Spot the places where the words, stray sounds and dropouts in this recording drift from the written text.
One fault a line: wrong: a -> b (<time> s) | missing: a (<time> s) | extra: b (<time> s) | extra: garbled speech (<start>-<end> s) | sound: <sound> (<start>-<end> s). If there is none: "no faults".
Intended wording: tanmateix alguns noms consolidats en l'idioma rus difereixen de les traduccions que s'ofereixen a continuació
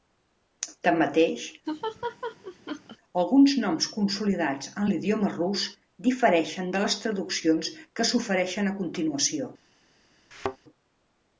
sound: laugh (1.7-3.0 s)
sound: thud (10.3-10.6 s)